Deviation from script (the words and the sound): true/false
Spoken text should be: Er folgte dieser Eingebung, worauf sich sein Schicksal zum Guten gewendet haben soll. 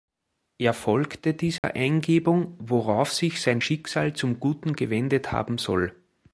true